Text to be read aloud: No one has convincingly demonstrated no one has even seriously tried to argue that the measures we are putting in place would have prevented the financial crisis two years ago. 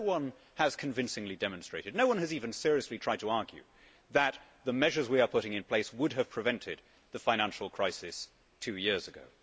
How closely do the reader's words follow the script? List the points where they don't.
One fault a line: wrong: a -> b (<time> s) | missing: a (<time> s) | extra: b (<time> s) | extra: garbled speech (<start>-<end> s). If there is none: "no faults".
no faults